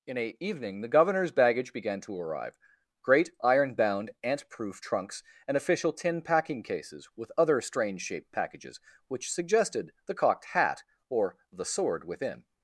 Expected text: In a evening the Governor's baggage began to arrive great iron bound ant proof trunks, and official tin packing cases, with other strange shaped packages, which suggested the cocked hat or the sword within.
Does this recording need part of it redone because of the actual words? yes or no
no